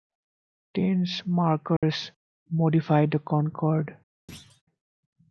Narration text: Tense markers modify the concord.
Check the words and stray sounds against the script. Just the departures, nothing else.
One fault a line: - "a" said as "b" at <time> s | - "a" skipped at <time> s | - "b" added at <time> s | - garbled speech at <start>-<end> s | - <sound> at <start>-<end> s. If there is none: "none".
- dropout at 1.8-1.8 s
- thud at 4.3-4.6 s